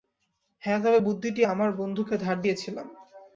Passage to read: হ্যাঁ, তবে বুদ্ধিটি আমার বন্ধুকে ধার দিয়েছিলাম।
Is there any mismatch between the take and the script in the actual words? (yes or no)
no